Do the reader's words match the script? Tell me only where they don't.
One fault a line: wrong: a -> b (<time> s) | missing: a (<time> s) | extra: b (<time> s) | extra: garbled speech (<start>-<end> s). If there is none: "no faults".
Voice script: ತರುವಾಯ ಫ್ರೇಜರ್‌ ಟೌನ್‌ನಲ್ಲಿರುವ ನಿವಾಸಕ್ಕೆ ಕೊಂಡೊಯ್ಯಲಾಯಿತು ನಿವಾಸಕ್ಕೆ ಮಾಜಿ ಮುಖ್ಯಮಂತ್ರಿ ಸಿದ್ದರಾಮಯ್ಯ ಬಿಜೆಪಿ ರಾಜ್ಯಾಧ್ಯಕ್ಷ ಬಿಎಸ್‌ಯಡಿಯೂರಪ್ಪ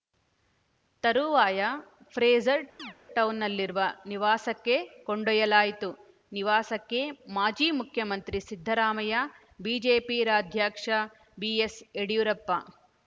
no faults